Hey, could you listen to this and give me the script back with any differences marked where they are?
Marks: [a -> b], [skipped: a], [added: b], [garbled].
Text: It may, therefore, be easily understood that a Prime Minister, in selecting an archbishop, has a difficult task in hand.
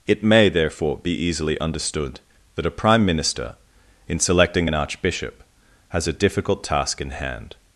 It may, therefore, be easily understood that a Prime Minister, in selecting an archbishop, has a difficult task in hand.